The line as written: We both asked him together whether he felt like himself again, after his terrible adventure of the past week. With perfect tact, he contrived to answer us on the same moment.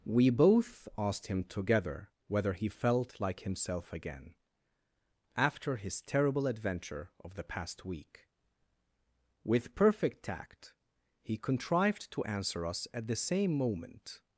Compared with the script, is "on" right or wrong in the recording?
wrong